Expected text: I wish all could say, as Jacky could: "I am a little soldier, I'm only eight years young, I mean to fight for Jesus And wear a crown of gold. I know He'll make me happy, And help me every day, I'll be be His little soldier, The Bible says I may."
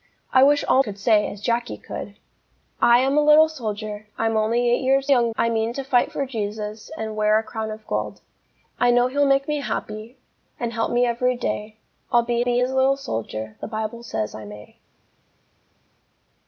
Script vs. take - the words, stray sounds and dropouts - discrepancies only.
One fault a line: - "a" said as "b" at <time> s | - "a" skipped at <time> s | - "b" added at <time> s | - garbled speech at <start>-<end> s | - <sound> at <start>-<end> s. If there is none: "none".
none